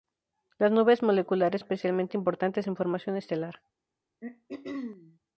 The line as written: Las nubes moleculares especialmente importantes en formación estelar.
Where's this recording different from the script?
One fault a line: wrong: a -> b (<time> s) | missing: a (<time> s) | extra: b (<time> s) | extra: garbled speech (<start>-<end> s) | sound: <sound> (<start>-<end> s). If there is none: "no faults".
sound: throat clearing (4.2-5.2 s)